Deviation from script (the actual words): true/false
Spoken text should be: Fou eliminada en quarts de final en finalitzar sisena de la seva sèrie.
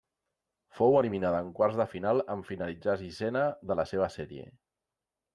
false